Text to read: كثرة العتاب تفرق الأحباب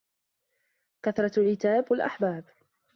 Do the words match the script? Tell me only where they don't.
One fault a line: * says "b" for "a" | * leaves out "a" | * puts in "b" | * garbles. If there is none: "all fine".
* leaves out "تفرق"